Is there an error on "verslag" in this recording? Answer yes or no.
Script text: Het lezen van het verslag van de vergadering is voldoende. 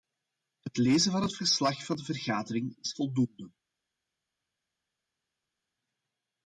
no